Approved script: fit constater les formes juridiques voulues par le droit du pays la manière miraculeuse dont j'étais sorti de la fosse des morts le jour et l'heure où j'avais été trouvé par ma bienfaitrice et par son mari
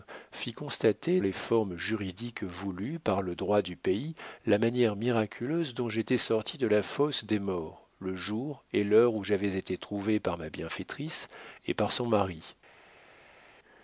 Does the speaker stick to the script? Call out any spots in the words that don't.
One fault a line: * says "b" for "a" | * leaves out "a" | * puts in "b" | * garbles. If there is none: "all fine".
all fine